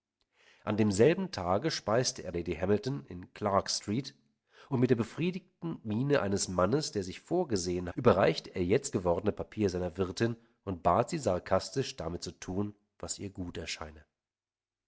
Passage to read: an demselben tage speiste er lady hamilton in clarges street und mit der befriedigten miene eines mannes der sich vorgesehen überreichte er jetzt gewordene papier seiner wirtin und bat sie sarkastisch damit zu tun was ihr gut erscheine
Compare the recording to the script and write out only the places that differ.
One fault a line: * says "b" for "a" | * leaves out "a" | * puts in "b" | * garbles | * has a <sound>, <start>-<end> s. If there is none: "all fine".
all fine